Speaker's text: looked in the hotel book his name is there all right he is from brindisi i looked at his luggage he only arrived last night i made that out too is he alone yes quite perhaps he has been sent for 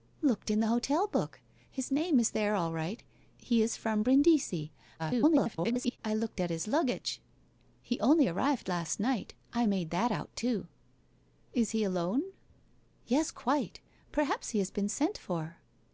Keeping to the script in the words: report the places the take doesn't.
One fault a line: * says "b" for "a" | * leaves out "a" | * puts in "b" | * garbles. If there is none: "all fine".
* garbles